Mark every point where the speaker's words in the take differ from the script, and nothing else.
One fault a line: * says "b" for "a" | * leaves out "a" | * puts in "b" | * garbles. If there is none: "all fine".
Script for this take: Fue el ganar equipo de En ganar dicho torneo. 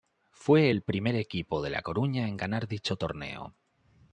* says "primer" for "ganar"
* puts in "La Coruña"